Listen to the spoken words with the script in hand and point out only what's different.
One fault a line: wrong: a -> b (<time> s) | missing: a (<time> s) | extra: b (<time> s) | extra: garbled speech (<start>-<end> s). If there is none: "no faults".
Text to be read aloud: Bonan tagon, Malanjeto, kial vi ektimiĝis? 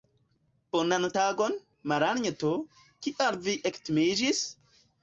no faults